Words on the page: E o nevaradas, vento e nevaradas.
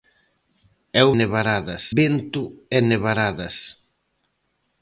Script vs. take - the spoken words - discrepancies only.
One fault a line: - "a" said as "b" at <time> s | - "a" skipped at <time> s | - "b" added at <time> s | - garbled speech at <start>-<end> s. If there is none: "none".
none